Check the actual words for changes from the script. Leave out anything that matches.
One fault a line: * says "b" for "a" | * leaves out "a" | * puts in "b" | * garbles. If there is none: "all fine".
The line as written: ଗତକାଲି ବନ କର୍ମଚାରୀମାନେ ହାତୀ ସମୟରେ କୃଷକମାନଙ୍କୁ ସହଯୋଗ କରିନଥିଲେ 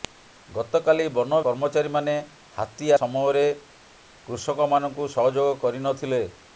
all fine